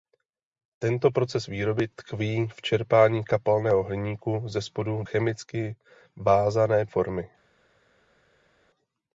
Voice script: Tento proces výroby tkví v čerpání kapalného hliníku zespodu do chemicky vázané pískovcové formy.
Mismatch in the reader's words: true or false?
true